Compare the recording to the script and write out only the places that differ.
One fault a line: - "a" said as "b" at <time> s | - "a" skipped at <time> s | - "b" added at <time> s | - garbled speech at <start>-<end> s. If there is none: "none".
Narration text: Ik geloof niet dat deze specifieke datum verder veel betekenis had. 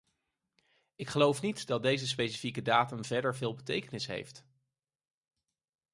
- "had" said as "heeft" at 4.1 s